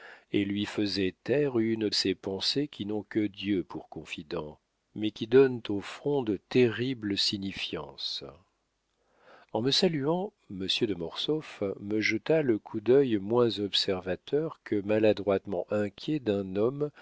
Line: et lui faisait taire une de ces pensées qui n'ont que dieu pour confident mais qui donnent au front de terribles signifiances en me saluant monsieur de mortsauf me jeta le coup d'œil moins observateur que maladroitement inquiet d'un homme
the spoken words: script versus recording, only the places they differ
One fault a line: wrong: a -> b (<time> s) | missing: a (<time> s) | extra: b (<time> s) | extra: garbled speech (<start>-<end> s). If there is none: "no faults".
missing: de (1.9 s)